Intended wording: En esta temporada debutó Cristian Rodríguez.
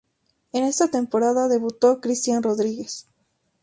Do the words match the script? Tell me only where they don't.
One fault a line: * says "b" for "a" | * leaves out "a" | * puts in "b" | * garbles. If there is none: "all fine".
all fine